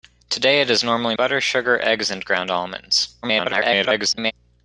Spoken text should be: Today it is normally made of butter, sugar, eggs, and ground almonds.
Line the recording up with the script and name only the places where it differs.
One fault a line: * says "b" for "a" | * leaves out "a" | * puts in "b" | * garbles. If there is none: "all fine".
* leaves out "made of"
* garbles